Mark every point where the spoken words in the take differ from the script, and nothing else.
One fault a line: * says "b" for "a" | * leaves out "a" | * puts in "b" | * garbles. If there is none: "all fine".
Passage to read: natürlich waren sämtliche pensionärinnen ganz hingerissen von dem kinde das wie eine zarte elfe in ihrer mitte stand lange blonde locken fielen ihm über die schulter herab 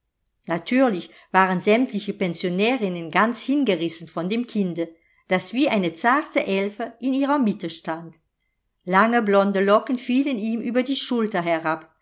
all fine